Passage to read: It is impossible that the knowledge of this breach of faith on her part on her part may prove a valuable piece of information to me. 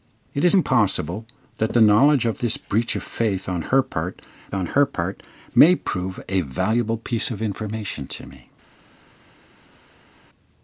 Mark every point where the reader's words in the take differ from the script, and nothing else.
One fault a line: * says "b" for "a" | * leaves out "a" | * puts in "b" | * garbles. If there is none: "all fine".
all fine